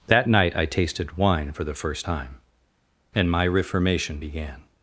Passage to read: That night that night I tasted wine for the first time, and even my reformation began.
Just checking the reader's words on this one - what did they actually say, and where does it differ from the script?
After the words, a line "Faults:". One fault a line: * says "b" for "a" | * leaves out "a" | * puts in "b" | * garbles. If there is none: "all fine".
That night I tasted wine for the first time, and my reformation began.
Faults:
* leaves out "that night"
* leaves out "even"